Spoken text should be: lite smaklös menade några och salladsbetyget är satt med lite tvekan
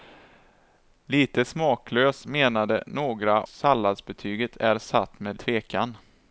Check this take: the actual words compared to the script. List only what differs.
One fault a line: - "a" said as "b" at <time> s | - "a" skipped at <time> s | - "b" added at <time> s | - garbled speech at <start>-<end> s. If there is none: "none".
- "och" skipped at 3.4 s
- "lite" skipped at 5.4 s